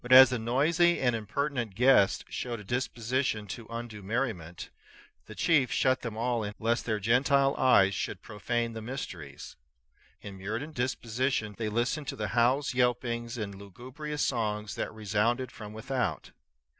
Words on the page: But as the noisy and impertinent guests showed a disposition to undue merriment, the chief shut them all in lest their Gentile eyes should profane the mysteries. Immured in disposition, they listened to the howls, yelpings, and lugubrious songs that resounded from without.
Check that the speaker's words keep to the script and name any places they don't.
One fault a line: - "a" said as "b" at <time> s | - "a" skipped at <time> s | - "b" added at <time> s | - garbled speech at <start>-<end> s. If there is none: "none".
none